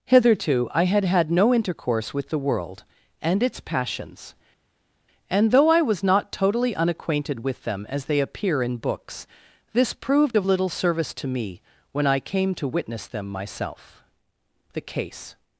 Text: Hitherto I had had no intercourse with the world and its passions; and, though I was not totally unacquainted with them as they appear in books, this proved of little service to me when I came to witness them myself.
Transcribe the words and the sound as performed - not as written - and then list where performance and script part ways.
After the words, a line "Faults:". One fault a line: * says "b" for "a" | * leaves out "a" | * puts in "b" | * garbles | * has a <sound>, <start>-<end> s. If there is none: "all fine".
Hitherto I had had no intercourse with the world and its passions; and, though I was not totally unacquainted with them as they appear in books, this proved of little service to me when I came to witness them myself. The case
Faults:
* puts in "The case"